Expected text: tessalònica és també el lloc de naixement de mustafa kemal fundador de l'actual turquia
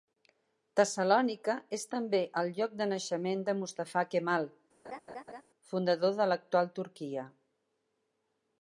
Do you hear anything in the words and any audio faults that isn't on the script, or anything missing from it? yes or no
yes